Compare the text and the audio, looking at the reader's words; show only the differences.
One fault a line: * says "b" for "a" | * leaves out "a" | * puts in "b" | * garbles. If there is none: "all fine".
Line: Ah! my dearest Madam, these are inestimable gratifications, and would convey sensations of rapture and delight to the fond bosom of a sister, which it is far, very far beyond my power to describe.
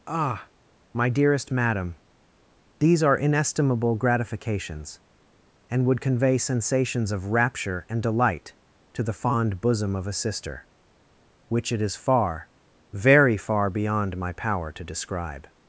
all fine